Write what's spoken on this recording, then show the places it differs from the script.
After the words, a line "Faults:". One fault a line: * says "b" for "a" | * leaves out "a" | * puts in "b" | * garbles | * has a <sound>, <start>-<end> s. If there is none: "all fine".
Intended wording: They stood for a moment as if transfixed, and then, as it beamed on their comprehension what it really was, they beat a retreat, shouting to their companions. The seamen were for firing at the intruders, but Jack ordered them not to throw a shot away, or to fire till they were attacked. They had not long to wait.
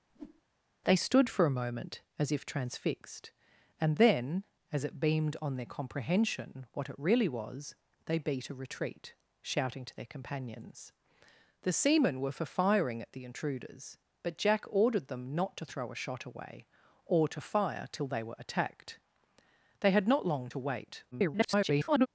They stood for a moment as if transfixed, and then, as it beamed on their comprehension what it really was, they beat a retreat, shouting to their companions. The seamen were for firing at the intruders, but Jack ordered them not to throw a shot away, or to fire till they were attacked. They had not long to wait. [garbled]
Faults:
* has a whoosh, 0.1-0.4 s
* garbles